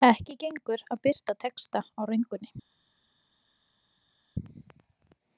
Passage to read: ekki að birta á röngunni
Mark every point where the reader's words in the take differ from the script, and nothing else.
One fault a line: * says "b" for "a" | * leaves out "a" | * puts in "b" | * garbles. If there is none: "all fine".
* puts in "gengur"
* puts in "texta"